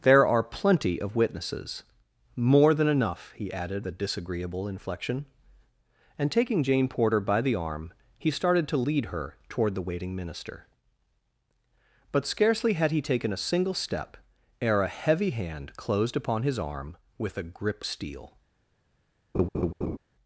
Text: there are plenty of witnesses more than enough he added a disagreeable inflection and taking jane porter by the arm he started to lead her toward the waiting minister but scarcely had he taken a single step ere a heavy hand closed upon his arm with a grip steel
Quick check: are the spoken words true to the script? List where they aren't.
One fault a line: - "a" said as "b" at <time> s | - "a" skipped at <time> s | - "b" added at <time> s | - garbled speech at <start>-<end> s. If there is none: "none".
none